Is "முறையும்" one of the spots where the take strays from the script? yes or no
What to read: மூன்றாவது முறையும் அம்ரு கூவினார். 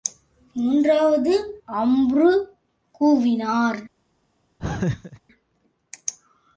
yes